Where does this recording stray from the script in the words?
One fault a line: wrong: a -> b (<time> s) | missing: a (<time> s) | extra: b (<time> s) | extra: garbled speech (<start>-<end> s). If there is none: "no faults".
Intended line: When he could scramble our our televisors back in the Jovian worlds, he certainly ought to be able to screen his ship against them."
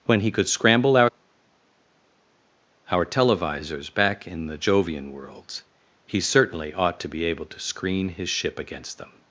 no faults